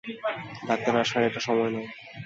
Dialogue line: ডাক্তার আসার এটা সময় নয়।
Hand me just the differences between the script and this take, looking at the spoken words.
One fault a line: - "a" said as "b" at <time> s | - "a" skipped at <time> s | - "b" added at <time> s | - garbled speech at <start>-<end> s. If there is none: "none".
none